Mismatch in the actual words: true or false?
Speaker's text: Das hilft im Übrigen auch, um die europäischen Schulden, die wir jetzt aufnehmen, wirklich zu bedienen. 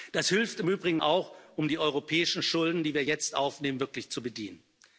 false